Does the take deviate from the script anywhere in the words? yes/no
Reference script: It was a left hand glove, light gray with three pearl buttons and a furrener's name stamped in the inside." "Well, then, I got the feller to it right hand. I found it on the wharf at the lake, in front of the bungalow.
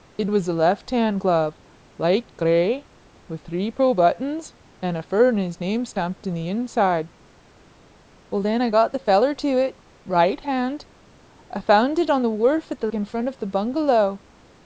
yes